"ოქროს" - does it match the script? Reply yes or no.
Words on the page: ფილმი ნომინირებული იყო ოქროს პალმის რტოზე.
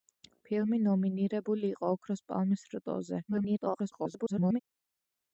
yes